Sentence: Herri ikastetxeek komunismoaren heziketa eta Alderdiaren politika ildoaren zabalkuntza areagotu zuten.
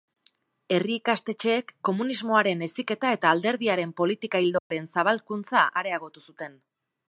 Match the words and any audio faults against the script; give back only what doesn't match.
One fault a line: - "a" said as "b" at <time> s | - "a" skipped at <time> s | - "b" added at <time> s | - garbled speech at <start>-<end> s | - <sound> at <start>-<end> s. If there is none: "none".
- dropout at 4.6-4.7 s